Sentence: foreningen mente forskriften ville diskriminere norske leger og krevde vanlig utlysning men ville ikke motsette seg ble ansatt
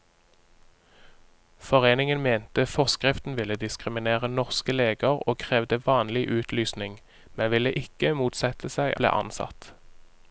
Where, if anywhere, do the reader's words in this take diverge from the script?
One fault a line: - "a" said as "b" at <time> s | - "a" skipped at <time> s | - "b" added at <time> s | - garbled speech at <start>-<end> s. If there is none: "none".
none